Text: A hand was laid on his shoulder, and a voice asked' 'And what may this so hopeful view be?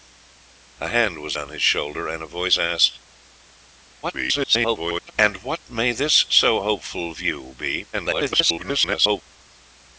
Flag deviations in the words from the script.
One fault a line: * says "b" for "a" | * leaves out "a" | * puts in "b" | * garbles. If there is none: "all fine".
* leaves out "laid"
* garbles
* garbles